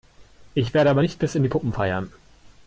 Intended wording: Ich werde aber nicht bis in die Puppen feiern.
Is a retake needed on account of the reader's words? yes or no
no